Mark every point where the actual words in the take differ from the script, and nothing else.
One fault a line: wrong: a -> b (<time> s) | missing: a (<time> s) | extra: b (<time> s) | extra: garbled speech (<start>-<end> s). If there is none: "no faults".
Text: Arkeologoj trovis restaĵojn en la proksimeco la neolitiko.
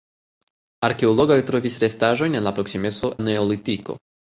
no faults